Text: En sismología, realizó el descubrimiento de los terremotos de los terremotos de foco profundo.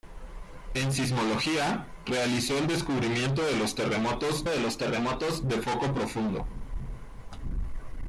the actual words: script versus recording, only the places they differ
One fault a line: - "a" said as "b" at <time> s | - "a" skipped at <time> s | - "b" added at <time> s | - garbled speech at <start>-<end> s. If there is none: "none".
none